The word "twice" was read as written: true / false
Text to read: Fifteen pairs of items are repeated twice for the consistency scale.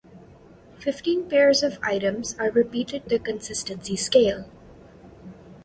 false